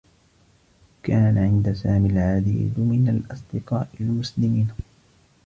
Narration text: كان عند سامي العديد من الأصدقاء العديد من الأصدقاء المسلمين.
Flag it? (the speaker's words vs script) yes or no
yes